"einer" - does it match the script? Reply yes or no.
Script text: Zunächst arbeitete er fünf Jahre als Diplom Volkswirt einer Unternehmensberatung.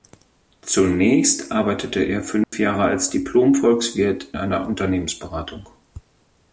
yes